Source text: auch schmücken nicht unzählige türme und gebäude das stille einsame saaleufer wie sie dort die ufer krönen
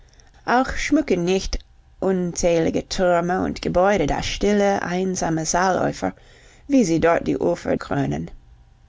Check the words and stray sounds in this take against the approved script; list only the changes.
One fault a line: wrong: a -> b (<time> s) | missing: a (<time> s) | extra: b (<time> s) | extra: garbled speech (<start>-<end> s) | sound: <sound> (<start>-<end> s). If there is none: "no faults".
no faults